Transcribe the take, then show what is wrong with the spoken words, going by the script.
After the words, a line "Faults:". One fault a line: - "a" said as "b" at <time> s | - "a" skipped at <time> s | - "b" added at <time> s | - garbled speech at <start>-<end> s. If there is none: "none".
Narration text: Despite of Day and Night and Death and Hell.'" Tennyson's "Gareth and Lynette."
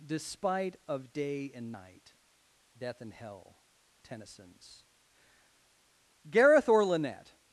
Despite of Day and Night Death and Hell.'" Tennyson's "Gareth or Lynette."
Faults:
- "and" skipped at 2.2 s
- "and" said as "or" at 6.7 s